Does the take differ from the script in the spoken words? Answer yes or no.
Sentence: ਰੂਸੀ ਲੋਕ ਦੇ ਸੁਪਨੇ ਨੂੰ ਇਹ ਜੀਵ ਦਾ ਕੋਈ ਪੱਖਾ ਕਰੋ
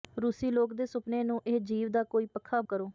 no